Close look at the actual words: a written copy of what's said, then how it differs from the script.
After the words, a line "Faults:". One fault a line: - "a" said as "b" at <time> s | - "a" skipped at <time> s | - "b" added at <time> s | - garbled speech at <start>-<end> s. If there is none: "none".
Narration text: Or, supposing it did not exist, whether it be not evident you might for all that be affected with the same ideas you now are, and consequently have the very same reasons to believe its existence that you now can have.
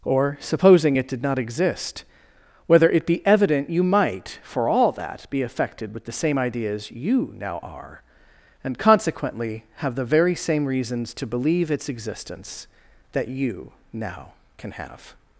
Or, supposing it did not exist, whether it be evident you might for all that be affected with the same ideas you now are, and consequently have the very same reasons to believe its existence that you now can have.
Faults:
- "not" skipped at 3.3 s